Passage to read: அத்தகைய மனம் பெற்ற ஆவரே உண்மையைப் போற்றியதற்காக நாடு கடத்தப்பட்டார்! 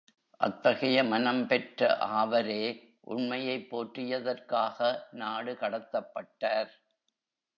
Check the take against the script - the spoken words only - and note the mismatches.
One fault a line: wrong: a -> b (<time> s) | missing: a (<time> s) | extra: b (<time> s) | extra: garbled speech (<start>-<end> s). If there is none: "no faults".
no faults